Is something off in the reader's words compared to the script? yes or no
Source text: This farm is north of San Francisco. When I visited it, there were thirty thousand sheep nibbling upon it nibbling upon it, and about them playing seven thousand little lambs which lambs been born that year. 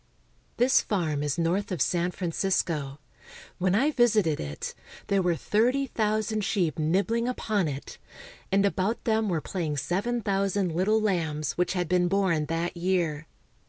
yes